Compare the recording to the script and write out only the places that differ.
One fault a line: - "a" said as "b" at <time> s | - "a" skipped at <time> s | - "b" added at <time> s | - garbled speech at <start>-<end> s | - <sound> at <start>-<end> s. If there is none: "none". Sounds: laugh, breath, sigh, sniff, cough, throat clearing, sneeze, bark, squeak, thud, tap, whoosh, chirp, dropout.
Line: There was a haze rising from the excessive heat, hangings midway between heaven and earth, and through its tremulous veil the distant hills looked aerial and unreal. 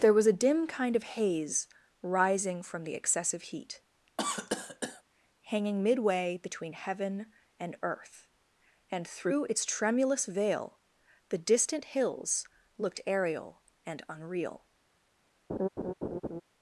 - "dim kind of" added at 0.4 s
- cough at 4.2-5.0 s
- "hangings" said as "hanging" at 5.4 s
- laugh at 15.5-16.4 s